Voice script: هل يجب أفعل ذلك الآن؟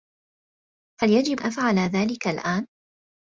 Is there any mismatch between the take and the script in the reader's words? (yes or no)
no